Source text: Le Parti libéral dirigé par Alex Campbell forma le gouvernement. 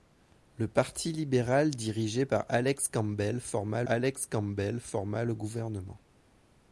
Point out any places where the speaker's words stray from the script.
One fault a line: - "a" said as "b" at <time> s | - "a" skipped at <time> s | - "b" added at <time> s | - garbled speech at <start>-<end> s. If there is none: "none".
- "Alex Campbell forma" added at 3.8 s